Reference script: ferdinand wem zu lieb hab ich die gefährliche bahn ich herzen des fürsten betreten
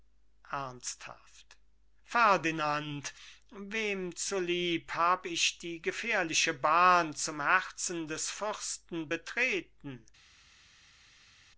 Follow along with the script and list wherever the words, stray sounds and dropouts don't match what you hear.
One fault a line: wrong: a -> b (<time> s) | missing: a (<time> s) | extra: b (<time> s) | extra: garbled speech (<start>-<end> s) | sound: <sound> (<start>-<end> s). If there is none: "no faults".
wrong: ich -> zum (7.2 s)